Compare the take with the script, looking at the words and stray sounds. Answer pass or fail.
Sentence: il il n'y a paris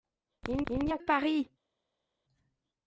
pass